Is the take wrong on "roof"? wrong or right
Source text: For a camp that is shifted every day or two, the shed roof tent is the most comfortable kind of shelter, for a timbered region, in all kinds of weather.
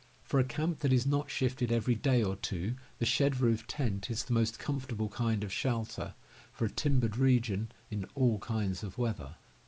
right